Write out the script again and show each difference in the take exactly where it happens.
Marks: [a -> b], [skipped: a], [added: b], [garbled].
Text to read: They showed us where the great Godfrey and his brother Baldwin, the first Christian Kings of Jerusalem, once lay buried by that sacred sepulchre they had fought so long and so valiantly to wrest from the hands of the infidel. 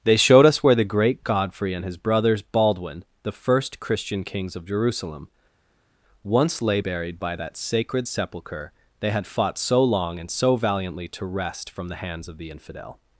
They showed us where the great Godfrey and his [brother -> brothers] Baldwin, the first Christian Kings of Jerusalem, once lay buried by that sacred sepulchre they had fought so long and so valiantly to wrest from the hands of the infidel.